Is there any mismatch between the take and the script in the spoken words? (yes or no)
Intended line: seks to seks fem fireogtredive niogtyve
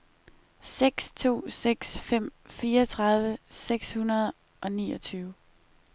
yes